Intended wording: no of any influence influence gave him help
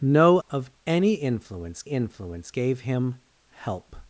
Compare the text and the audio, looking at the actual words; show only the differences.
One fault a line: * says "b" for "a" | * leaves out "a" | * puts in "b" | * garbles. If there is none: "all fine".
all fine